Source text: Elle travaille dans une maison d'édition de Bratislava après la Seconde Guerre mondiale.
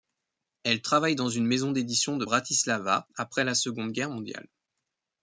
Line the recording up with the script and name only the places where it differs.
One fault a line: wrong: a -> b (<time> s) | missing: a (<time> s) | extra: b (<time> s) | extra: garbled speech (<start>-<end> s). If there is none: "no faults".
no faults